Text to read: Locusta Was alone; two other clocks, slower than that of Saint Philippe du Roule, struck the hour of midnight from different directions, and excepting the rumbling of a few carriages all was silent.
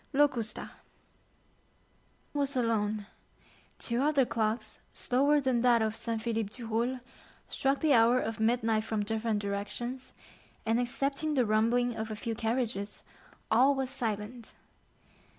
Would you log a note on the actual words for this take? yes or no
no